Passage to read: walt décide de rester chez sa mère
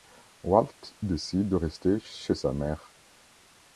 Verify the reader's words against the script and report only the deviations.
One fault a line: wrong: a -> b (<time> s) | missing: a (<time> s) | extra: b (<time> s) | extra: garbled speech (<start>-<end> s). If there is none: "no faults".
no faults